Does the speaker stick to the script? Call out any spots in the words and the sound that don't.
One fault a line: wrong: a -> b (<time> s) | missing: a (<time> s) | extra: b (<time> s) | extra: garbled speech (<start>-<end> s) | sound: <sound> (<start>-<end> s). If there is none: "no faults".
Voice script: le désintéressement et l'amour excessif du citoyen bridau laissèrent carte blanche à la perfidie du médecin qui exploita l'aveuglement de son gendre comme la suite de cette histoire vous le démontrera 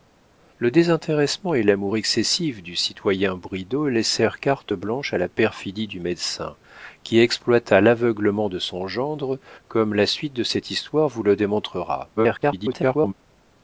extra: garbled speech (12.2-13.1 s)